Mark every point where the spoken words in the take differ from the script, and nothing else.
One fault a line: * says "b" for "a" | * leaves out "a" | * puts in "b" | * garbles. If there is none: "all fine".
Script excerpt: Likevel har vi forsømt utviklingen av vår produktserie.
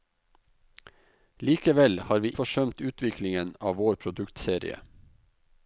all fine